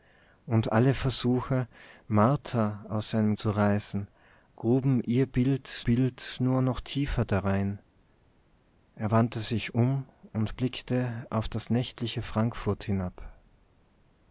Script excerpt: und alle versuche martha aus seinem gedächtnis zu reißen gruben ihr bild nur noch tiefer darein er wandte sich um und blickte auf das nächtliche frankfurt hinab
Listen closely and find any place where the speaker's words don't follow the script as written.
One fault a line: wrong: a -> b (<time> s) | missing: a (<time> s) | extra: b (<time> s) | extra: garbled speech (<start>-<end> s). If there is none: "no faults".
missing: gedächtnis (3.4 s)
extra: bild (5.8 s)